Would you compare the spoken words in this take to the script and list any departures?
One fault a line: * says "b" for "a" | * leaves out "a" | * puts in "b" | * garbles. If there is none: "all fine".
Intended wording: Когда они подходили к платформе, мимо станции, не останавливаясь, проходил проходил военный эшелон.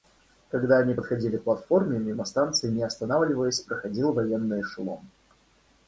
* leaves out "проходил"